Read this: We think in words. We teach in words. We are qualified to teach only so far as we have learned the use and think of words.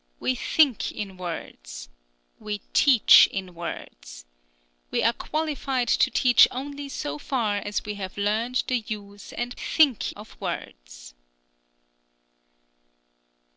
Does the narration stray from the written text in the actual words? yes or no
no